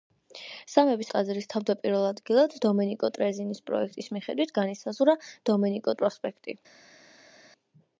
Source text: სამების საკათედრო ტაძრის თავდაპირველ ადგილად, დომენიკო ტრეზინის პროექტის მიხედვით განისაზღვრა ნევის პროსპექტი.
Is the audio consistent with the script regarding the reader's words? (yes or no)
no